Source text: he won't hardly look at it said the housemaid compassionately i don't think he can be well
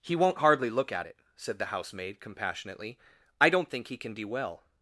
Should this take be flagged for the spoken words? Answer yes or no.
no